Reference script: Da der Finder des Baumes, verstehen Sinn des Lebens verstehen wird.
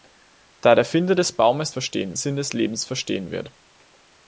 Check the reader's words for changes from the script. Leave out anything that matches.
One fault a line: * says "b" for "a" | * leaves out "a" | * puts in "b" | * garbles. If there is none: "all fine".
all fine